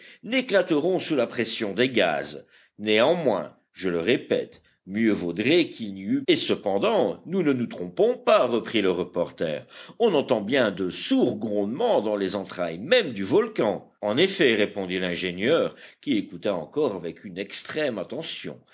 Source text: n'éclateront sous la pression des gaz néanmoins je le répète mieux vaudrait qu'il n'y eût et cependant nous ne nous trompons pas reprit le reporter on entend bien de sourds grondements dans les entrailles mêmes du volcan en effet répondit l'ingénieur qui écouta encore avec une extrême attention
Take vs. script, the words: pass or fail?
pass